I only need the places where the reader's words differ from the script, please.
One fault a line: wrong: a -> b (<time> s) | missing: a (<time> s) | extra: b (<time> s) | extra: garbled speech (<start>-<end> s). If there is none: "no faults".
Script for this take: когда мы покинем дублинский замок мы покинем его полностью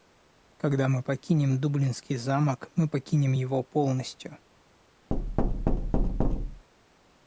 no faults